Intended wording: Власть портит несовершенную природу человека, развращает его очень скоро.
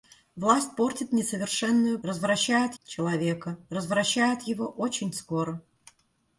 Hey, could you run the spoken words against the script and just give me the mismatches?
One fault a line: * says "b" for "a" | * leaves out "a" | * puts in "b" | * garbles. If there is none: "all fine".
* says "развращает" for "природу"